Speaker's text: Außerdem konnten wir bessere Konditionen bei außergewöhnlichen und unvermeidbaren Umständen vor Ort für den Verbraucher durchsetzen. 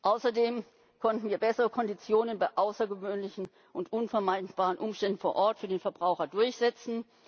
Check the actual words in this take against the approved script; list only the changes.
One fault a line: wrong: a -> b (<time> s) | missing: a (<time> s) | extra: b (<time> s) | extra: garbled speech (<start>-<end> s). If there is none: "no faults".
no faults